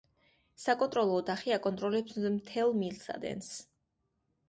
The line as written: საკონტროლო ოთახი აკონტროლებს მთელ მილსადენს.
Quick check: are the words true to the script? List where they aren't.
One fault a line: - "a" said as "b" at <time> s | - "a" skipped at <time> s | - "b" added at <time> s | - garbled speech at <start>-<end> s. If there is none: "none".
none